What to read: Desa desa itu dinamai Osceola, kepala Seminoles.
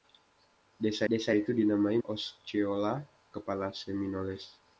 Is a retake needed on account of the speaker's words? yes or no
no